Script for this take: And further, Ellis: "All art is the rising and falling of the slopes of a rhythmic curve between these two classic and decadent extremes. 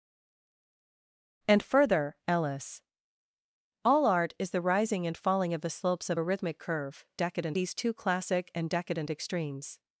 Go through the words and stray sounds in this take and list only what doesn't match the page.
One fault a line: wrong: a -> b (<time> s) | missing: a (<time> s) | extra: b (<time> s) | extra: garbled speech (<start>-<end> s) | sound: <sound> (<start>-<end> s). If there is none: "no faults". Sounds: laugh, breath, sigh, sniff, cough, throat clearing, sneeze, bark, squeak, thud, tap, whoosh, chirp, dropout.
wrong: between -> decadent (7.2 s)